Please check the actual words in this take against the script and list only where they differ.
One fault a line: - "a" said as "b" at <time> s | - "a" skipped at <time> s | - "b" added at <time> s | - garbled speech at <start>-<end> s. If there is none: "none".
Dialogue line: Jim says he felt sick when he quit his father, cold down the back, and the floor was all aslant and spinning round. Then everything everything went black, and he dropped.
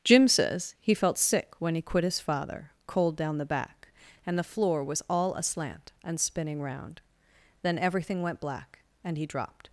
- "everything" skipped at 8.2 s